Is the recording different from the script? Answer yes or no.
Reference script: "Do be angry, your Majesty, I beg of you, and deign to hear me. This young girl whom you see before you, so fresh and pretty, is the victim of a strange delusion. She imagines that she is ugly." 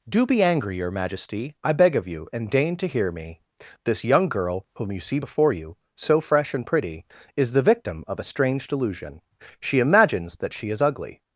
no